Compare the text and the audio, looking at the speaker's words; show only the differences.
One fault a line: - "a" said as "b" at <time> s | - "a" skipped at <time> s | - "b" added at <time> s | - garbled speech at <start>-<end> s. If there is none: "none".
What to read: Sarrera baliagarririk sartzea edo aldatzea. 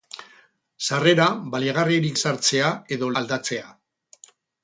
none